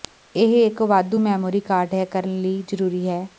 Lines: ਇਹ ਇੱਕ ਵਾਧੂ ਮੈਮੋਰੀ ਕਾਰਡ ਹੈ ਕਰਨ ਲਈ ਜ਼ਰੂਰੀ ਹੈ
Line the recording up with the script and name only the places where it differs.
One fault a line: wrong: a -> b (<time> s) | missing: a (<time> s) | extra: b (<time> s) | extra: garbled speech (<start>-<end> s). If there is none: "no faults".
no faults